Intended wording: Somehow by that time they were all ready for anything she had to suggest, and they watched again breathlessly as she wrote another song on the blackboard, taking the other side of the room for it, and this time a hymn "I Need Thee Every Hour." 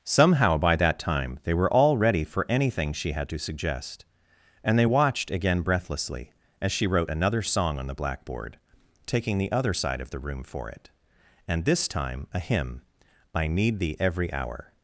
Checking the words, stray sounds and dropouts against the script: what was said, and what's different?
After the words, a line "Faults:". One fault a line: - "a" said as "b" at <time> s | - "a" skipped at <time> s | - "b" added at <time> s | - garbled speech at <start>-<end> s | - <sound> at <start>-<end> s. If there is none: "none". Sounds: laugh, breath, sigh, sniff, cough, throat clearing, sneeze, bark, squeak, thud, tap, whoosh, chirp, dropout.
Somehow by that time they were all ready for anything she had to suggest, and they watched again breathlessly as she wrote another song on the blackboard, taking the other side of the room for it, and this time a hymn "I Need Thee Every Hour."
Faults:
none